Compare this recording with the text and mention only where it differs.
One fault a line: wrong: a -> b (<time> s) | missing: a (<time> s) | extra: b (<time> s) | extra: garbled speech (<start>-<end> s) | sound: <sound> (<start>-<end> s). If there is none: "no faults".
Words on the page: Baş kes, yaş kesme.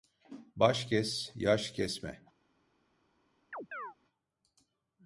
sound: chirp (3.5-4.0 s)